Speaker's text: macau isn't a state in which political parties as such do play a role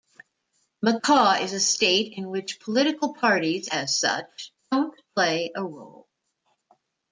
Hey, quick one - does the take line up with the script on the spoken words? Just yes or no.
no